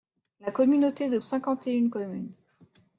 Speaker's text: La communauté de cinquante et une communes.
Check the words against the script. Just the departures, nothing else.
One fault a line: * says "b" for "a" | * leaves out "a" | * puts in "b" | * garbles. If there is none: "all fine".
all fine